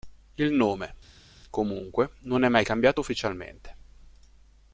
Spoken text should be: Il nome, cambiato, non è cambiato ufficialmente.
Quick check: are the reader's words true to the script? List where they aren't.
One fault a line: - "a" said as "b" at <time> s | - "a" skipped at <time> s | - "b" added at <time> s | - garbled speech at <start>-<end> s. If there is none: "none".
- "cambiato" said as "comunque" at 1.5 s
- "mai" added at 2.5 s